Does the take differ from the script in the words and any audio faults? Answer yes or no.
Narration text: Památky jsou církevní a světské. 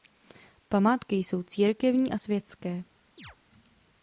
yes